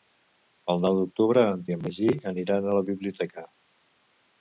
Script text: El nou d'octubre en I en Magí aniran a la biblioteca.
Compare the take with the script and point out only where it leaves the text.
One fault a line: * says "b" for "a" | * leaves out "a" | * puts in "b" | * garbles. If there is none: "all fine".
all fine